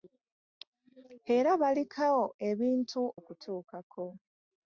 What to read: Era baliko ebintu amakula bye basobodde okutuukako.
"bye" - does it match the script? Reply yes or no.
no